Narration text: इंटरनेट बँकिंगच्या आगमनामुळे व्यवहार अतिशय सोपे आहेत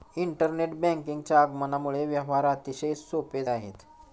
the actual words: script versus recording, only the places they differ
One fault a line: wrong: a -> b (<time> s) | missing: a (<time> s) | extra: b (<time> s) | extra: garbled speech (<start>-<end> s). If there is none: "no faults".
no faults